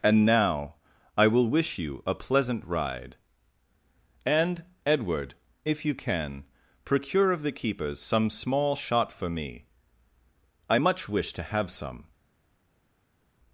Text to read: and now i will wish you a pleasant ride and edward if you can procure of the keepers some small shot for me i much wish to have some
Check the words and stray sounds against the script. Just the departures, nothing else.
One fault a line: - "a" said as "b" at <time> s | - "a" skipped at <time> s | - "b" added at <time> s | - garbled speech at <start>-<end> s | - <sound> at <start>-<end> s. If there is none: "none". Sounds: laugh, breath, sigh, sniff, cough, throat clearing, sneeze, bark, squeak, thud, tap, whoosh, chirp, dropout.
none